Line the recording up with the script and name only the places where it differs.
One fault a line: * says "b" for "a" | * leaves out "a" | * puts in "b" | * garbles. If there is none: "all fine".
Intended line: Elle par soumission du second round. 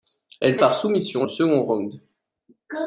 all fine